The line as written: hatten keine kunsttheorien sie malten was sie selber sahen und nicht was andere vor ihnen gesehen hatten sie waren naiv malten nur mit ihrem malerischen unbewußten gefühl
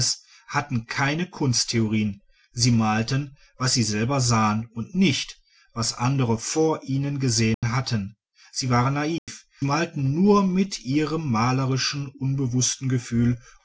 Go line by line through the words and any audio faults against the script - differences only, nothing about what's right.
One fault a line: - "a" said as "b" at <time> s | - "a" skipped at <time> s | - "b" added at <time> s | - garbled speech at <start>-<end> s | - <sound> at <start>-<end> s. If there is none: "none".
- dropout at 7.5-7.6 s
- dropout at 9.2-9.3 s